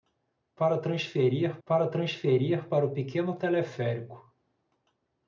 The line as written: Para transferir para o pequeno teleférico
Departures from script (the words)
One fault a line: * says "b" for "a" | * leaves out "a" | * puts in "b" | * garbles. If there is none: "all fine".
* puts in "transferir para"